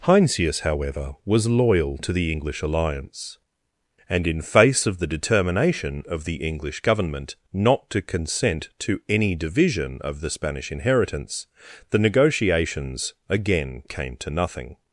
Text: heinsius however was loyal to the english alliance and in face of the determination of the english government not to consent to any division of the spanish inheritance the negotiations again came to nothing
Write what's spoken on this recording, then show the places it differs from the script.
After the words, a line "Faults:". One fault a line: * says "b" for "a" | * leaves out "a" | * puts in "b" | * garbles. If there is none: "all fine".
heinsius however was loyal to the english alliance and in face of the determination of the english government not to consent to any division of the spanish inheritance the negotiations again came to nothing
Faults:
all fine